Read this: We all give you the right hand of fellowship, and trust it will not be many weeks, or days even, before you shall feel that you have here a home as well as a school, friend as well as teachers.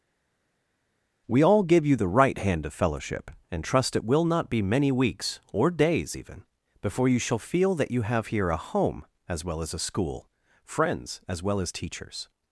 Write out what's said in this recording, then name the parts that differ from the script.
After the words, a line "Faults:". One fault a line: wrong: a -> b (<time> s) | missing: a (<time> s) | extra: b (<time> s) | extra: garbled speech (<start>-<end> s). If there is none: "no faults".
We all give you the right hand of fellowship, and trust it will not be many weeks, or days even, before you shall feel that you have here a home as well as a school, friends as well as teachers.
Faults:
wrong: friend -> friends (10.6 s)